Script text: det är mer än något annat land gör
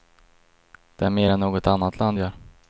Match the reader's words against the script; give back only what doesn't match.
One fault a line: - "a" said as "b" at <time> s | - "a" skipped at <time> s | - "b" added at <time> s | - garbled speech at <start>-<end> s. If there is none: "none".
none